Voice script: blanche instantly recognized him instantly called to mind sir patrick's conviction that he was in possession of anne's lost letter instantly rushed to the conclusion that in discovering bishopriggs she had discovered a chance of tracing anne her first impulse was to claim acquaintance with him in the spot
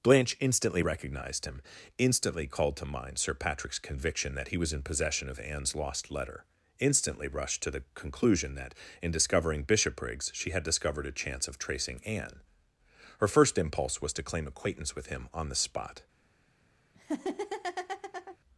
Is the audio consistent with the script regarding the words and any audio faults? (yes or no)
no